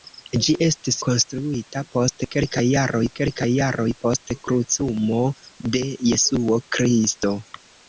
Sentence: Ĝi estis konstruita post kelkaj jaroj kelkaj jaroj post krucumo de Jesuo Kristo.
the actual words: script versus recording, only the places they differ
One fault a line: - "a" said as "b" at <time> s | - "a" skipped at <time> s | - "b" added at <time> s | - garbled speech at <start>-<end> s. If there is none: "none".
none